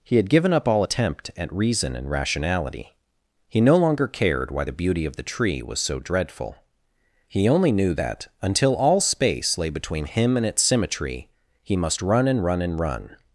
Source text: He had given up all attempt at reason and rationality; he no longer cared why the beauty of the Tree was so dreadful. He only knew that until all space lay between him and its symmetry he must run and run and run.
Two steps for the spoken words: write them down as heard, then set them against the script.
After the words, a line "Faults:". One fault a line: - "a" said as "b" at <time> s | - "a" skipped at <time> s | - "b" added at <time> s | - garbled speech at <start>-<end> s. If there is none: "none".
He had given up all attempt at reason and rationality; he no longer cared why the beauty of the Tree was so dreadful. He only knew that until all space lay between him and its symmetry he must run and run and run.
Faults:
none